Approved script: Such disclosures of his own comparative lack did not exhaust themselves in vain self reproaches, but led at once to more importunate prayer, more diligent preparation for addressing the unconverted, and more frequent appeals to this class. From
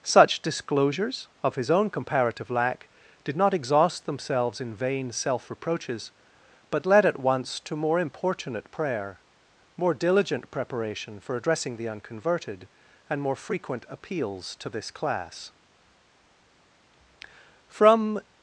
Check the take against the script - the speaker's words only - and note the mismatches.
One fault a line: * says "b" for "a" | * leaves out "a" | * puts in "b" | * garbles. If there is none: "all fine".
all fine